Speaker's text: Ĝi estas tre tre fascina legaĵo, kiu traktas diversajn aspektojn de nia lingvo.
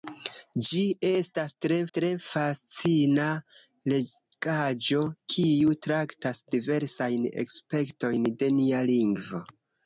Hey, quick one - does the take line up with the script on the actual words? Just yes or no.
yes